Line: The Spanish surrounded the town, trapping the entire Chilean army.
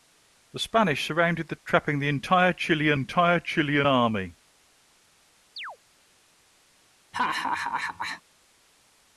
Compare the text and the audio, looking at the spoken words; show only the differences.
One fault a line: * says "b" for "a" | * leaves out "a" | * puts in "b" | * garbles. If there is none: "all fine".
* leaves out "town"
* puts in "entire Chilean"